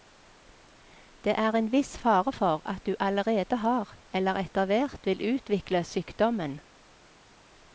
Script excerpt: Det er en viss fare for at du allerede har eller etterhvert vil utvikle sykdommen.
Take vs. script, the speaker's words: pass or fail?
pass